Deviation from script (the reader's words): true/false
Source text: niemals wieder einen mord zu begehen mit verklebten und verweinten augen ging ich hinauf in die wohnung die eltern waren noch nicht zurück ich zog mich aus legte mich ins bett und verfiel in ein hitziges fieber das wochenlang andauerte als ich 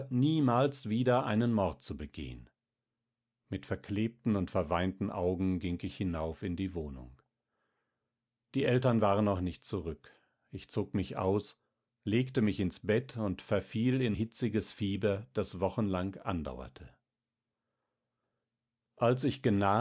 true